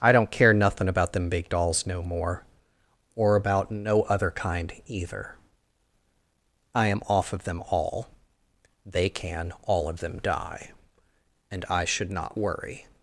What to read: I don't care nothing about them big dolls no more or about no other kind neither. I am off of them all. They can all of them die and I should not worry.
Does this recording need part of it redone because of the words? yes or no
yes